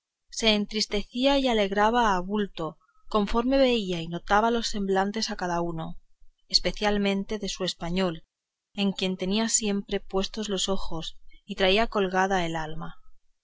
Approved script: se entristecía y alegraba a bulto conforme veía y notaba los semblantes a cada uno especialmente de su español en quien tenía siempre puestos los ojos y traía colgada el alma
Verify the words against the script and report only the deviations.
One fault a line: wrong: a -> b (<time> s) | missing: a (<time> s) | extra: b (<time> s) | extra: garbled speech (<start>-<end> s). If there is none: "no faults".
no faults